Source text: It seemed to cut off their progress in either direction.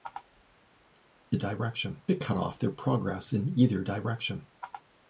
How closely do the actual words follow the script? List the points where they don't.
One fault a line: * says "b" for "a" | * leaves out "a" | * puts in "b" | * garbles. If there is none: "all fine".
* says "direction" for "seemed"